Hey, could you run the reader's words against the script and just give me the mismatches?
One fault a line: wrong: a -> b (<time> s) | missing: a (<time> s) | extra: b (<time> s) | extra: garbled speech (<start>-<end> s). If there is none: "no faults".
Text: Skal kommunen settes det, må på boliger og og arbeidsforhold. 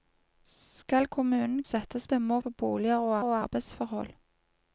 no faults